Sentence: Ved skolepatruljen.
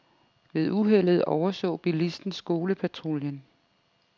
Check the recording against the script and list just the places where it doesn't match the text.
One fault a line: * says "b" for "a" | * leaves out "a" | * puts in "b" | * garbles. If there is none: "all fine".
* puts in "uheldet overså bilisten"